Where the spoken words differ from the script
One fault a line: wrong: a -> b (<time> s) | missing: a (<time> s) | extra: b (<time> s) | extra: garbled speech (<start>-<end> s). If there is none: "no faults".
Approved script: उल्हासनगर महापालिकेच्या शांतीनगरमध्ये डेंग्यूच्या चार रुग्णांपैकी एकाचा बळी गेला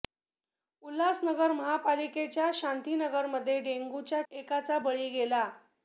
missing: चार रुग्णांपैकी (4.2 s)